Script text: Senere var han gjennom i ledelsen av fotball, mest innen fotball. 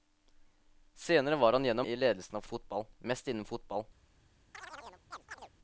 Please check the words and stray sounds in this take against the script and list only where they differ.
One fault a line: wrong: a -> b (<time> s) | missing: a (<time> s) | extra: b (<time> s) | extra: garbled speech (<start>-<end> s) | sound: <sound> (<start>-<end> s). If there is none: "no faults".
sound: chirp (4.5-5.5 s)